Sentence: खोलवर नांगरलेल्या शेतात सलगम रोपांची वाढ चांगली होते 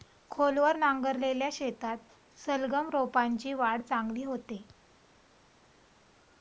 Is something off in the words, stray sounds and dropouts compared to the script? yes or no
no